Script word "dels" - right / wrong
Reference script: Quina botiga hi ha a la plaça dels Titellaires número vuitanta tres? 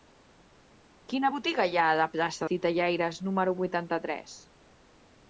wrong